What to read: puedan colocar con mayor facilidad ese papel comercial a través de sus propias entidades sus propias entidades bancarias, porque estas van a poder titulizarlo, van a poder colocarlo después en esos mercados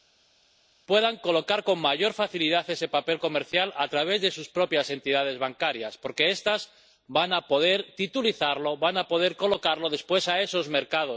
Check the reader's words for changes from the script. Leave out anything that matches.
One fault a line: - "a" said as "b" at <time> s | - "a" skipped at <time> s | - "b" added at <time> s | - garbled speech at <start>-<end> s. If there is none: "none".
- "sus propias entidades" skipped at 5.4 s